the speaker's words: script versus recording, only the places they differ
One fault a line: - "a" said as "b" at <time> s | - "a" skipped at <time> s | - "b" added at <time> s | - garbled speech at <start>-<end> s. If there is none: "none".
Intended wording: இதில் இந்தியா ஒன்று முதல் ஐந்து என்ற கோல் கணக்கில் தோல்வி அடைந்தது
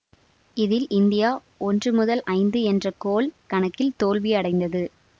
none